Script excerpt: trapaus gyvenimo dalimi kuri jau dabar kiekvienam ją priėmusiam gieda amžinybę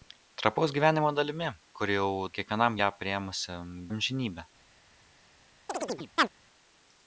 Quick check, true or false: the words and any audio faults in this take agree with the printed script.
false